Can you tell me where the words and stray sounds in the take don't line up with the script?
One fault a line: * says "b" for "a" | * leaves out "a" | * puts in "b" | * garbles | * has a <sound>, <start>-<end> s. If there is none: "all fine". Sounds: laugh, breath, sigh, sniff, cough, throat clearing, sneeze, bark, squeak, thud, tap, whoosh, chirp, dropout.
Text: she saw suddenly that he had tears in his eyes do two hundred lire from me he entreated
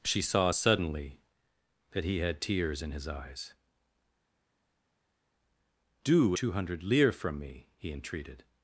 all fine